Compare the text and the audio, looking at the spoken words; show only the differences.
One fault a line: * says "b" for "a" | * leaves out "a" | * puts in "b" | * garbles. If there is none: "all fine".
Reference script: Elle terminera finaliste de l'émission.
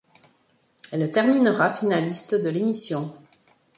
all fine